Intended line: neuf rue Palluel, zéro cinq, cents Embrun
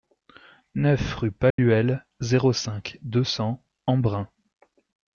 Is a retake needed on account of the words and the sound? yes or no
yes